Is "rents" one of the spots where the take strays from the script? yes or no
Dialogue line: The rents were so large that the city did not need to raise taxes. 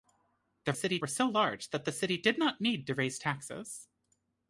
yes